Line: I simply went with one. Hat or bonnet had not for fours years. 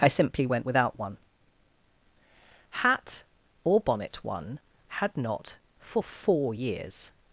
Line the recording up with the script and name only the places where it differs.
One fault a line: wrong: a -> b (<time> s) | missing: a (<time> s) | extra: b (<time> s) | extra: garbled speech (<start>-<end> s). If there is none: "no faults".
wrong: with -> without (0.7 s)
extra: one (4.2 s)
wrong: fours -> four (6.0 s)